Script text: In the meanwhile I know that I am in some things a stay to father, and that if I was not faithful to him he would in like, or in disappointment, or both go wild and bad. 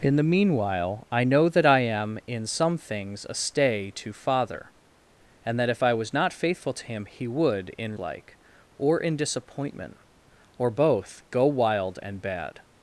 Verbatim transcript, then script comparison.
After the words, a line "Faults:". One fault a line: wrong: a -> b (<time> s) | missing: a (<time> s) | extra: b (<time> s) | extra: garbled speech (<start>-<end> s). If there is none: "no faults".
In the meanwhile I know that I am in some things a stay to father, and that if I was not faithful to him he would in like, or in disappointment, or both go wild and bad.
Faults:
no faults